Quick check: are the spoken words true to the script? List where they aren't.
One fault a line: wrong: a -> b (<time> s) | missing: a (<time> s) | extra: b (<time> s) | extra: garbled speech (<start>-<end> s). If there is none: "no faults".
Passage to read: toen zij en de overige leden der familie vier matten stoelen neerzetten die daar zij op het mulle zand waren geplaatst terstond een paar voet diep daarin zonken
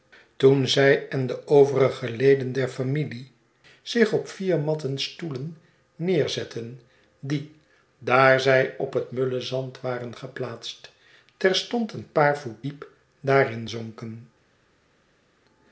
extra: zich op (3.8 s)